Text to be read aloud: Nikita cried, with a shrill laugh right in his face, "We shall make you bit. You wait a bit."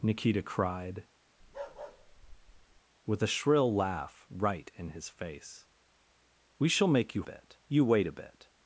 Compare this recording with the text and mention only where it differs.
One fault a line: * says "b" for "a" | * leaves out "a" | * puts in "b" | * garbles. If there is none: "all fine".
all fine